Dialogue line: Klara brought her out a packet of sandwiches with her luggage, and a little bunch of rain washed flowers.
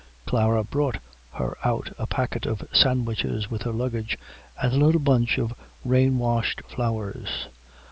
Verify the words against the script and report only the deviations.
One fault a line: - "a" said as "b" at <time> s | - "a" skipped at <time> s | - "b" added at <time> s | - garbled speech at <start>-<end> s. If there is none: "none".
none